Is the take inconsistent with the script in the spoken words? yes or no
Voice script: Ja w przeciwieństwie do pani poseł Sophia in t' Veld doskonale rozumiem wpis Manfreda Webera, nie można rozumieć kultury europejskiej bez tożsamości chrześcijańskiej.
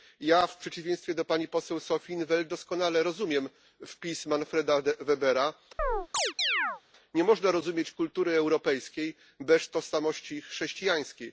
no